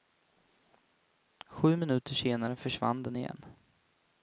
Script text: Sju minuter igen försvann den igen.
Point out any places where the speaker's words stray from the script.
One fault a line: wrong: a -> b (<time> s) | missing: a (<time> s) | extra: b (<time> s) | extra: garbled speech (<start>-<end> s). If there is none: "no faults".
wrong: igen -> senare (2.1 s)